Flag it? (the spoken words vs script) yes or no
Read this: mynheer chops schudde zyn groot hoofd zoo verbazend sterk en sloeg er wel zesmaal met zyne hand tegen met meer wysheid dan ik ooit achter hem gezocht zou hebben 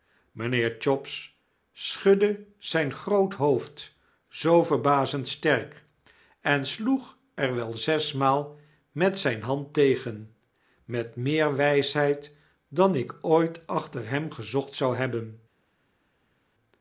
no